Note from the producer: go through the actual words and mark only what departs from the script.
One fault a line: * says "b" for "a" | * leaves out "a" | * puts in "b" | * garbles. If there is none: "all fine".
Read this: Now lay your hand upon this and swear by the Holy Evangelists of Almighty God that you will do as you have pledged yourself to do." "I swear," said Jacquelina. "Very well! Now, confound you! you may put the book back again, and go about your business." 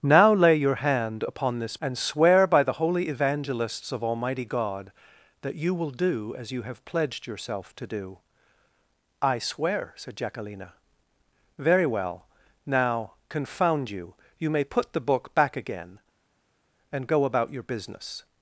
all fine